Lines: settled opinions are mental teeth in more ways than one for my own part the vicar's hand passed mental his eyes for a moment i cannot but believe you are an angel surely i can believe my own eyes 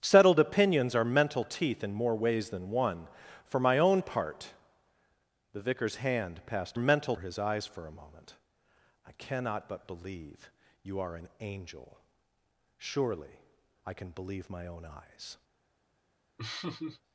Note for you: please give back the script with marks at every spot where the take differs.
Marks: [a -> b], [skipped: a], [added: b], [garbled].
settled opinions are mental teeth in more ways than one for my own part the vicar's hand passed mental his eyes for a moment i cannot but believe you are an angel surely i can believe my own eyes